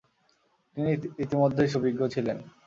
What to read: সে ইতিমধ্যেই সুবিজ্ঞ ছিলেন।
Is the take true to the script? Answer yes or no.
no